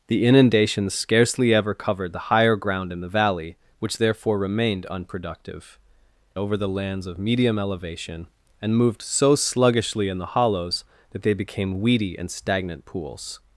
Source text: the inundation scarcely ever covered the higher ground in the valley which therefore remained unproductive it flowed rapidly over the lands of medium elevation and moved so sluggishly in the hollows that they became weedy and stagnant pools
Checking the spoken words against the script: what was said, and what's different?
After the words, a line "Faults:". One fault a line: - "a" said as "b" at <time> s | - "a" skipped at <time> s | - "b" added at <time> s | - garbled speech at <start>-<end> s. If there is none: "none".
the inundation scarcely ever covered the higher ground in the valley which therefore remained unproductive over the lands of medium elevation and moved so sluggishly in the hollows that they became weedy and stagnant pools
Faults:
- "it flowed rapidly" skipped at 5.8 s